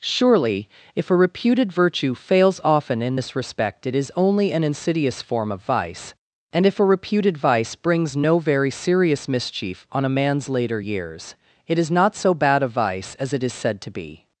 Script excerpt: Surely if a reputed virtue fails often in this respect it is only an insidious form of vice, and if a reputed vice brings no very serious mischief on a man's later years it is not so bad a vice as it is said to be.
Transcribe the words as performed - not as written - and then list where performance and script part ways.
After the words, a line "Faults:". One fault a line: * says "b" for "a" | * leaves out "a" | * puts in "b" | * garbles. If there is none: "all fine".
Surely if a reputed virtue fails often in this respect it is only an insidious form of vice, and if a reputed vice brings no very serious mischief on a man's later years it is not so bad a vice as it is said to be.
Faults:
all fine